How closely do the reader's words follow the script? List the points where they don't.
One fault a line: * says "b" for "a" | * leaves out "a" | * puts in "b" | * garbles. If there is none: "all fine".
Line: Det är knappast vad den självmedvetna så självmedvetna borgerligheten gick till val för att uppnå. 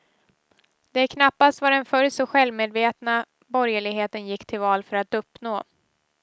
* says "förr" for "självmedvetna"